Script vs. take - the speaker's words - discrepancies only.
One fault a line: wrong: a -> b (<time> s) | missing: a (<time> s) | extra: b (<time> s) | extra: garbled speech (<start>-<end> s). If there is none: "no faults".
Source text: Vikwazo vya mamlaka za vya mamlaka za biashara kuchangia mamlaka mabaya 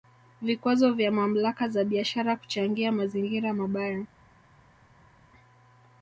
missing: vya mamlaka za (1.8 s)
wrong: mamlaka -> mazingira (2.9 s)